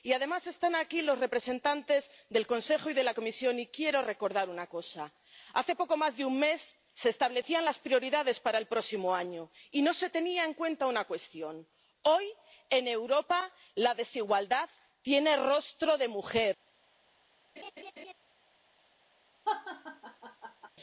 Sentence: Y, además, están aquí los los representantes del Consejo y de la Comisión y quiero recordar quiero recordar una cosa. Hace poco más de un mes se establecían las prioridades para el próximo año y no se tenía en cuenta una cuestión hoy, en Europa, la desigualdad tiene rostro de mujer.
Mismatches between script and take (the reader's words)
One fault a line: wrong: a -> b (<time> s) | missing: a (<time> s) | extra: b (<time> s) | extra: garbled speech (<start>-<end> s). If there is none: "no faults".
missing: los (1.2 s)
missing: quiero recordar (4.5 s)